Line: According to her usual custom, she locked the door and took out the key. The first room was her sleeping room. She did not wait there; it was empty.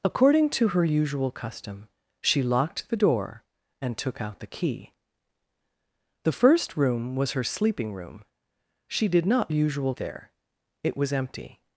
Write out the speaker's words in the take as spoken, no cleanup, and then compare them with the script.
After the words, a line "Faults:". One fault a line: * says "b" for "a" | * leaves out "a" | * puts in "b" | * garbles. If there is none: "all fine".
According to her usual custom, she locked the door and took out the key. The first room was her sleeping room. She did not usual there; it was empty.
Faults:
* says "usual" for "wait"